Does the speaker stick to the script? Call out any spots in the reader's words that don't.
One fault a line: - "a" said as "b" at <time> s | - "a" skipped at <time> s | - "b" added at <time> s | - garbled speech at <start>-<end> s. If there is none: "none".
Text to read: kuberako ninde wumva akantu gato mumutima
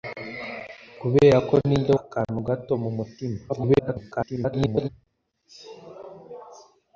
- "wumva" skipped at 1.9 s
- garbled speech at 3.5-4.9 s